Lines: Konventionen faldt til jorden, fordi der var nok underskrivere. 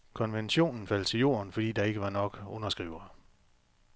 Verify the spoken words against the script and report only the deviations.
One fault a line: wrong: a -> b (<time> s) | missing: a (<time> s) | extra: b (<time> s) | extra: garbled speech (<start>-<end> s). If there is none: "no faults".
extra: ikke (1.8 s)